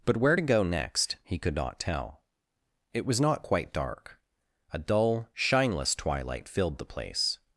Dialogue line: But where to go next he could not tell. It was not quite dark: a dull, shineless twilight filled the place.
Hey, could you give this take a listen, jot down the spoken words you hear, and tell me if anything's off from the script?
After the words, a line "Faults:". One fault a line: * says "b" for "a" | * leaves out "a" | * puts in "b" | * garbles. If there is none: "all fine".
But where to go next he could not tell. It was not quite dark: a dull, shineless twilight filled the place.
Faults:
all fine